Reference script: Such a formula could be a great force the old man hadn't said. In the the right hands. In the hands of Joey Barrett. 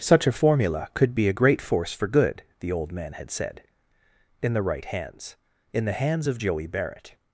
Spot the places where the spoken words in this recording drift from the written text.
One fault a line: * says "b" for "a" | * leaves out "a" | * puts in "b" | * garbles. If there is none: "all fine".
* puts in "for good"
* says "had" for "hadn't"
* leaves out "the"